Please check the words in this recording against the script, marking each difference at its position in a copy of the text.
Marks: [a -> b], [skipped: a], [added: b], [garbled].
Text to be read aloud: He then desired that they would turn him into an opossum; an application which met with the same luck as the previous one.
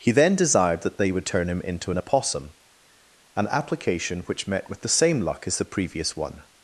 He then desired that they would turn him into an opossum; an application which met with the same luck as the previous one.